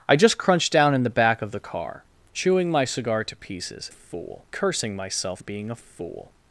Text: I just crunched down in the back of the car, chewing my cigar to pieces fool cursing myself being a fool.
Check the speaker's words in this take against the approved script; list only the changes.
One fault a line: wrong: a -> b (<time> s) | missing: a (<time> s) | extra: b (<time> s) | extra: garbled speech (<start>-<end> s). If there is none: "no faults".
no faults